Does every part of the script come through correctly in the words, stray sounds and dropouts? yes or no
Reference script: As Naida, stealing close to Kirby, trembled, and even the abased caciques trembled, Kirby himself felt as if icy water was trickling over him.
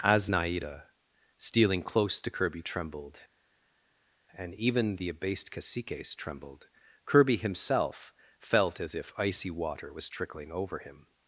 yes